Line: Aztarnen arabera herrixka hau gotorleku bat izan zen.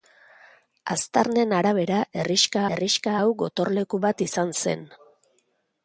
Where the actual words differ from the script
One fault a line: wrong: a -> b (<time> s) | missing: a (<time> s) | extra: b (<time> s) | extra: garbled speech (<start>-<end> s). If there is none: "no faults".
extra: herrixka (2.7 s)